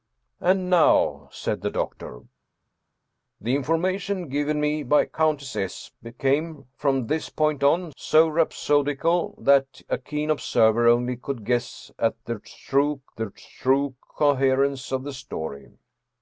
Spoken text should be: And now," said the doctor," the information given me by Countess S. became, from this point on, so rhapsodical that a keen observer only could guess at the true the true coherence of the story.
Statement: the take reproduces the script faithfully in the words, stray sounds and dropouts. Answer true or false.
true